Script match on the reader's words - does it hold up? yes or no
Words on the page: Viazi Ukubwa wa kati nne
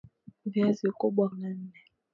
no